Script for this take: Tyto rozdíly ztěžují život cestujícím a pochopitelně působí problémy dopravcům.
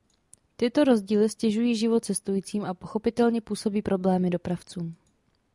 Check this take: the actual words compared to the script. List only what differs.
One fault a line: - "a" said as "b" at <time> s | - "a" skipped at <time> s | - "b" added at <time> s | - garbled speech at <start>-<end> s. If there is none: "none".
none